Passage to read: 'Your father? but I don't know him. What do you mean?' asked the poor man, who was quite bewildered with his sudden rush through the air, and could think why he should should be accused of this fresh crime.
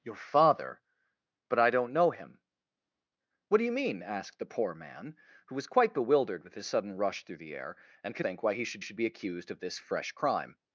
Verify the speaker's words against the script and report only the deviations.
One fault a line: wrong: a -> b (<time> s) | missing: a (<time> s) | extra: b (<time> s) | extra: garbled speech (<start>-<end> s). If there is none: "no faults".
no faults